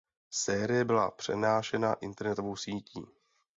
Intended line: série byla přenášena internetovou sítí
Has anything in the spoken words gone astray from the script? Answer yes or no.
no